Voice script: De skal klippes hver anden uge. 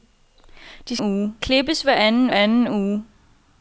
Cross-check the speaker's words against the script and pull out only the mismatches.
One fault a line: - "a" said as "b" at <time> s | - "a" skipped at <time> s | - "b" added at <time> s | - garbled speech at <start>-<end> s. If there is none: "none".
- "skal" said as "uge" at 1.0 s
- "anden" added at 2.3 s